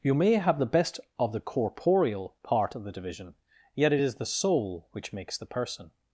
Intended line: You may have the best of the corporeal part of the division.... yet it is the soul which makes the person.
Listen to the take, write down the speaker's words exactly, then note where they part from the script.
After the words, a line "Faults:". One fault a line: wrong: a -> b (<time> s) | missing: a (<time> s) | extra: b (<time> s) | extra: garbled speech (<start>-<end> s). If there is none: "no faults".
You may have the best of the corporeal part of the division.... yet it is the soul which makes the person.
Faults:
no faults